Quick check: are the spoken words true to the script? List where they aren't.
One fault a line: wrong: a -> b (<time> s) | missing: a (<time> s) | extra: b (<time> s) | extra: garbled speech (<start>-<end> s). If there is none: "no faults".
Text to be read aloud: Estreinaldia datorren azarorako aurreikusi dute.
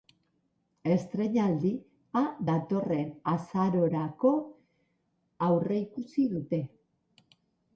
no faults